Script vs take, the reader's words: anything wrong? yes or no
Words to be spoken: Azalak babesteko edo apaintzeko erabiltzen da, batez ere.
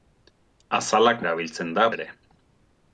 yes